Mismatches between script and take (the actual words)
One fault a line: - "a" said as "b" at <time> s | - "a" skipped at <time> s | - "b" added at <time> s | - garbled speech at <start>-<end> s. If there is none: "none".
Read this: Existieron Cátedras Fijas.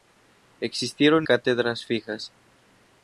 none